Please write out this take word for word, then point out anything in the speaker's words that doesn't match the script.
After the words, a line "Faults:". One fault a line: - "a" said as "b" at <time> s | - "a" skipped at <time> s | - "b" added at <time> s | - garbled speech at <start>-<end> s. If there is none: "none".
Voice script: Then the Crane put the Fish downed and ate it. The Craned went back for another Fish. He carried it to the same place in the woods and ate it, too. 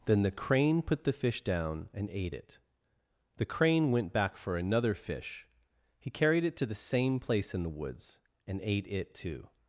Then the Crane put the Fish down and ate it. The Crane went back for another Fish. He carried it to the same place in the woods and ate it, too.
Faults:
- "downed" said as "down" at 1.4 s
- "Craned" said as "Crane" at 3.5 s